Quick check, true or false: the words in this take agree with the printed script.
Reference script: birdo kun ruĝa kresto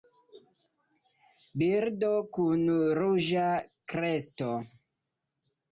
true